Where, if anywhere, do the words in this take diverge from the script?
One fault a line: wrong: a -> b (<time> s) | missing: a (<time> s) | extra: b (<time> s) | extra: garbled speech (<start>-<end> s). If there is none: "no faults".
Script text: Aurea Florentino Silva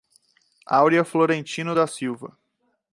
extra: da (1.7 s)